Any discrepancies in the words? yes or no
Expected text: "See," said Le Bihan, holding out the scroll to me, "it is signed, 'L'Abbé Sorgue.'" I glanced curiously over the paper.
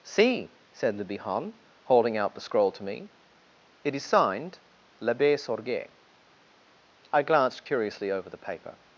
no